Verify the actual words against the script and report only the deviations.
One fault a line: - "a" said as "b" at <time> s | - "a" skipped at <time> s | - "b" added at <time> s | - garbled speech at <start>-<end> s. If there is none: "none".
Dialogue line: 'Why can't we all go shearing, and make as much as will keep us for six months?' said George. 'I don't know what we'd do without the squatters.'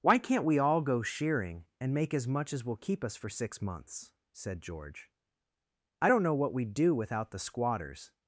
none